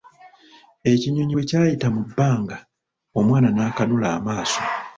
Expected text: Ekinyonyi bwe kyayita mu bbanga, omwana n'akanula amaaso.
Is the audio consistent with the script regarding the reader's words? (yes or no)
yes